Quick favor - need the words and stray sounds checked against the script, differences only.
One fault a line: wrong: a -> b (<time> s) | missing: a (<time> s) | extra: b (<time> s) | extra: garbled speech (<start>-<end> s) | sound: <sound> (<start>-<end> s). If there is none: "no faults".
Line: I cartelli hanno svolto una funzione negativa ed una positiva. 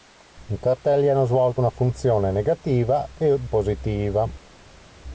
missing: una (3.5 s)